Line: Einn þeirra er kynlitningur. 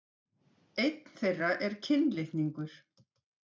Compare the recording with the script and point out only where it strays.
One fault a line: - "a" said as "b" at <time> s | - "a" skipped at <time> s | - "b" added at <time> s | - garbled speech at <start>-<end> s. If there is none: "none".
none